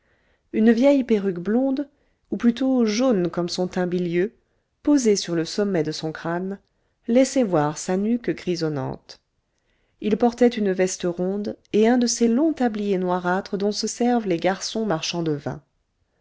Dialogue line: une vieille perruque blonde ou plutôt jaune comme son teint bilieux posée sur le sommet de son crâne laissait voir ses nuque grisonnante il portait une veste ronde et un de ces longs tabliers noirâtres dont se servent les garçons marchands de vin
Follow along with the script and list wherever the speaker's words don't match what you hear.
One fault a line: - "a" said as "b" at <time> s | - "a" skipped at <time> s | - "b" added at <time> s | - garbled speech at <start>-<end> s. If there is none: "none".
- "ses" said as "sa" at 7.8 s